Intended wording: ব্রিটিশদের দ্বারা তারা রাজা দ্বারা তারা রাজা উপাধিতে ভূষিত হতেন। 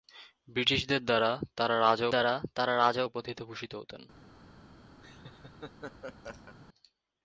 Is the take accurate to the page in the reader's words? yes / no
yes